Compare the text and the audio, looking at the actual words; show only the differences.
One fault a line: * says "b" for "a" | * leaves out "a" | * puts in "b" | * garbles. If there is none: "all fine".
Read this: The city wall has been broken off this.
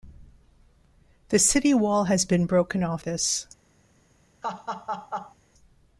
all fine